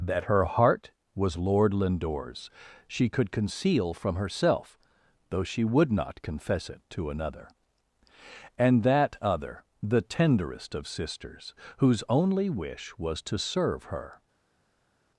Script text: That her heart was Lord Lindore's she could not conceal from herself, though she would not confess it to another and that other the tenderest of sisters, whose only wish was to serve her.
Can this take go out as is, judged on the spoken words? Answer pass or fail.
fail